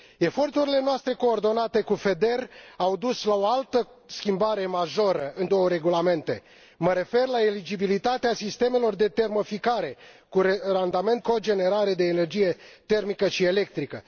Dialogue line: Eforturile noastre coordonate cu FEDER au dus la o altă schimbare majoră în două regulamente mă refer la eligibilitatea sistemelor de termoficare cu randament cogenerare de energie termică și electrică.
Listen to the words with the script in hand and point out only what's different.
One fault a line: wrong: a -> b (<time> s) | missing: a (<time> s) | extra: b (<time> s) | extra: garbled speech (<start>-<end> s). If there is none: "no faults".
no faults